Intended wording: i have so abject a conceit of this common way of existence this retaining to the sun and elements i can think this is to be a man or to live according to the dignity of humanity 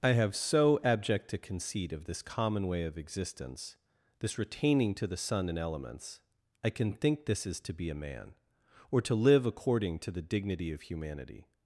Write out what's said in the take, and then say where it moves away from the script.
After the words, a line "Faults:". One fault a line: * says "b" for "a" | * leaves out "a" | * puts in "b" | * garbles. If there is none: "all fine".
i have so abject a conceit of this common way of existence this retaining to the sun and elements i can think this is to be a man or to live according to the dignity of humanity
Faults:
all fine